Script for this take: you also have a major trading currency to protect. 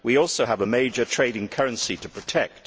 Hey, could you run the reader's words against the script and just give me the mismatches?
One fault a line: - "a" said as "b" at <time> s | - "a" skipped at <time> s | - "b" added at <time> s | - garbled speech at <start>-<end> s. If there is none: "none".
- "you" said as "we" at 0.0 s